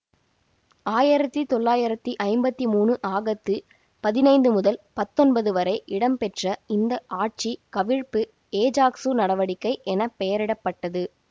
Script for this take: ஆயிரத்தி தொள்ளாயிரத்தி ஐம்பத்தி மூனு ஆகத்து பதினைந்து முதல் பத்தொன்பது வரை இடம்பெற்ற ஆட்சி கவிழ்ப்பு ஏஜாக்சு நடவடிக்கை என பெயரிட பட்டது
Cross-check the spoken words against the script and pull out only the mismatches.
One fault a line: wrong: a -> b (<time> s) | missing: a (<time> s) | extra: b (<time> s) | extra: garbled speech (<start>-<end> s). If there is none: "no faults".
extra: இந்த (6.7 s)